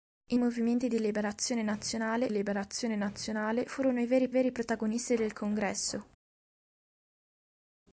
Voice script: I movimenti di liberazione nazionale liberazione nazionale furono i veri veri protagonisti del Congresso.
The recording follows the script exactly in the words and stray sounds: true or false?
true